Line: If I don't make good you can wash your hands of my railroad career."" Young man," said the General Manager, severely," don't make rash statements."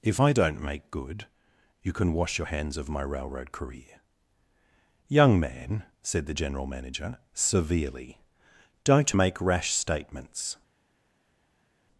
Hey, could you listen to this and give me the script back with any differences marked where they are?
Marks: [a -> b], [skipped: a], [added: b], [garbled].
If I don't make good you can wash your hands of my railroad career."" Young man," said the General Manager, severely," don't make rash statements."